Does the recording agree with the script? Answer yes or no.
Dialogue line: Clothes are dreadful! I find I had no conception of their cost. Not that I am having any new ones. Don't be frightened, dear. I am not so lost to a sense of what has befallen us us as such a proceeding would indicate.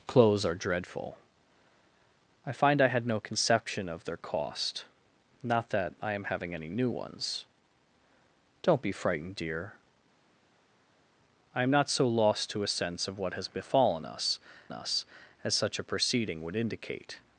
yes